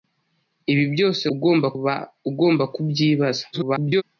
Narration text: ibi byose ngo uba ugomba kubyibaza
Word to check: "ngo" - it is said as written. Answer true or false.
false